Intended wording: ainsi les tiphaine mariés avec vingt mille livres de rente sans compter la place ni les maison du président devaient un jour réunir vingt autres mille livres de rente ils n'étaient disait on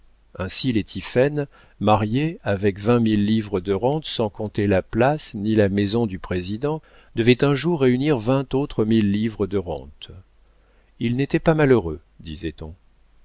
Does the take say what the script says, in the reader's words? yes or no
no